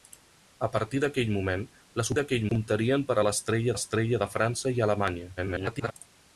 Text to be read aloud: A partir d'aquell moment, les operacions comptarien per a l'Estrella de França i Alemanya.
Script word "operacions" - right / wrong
wrong